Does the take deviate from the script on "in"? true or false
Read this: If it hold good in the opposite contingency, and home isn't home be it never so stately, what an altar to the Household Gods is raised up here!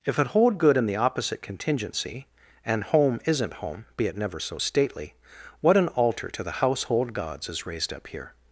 false